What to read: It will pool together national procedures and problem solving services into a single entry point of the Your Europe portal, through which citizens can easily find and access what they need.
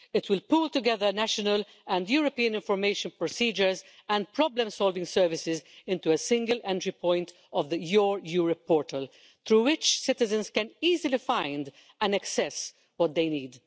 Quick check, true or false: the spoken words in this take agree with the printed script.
false